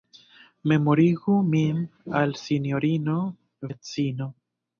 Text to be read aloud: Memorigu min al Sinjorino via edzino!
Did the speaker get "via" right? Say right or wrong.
wrong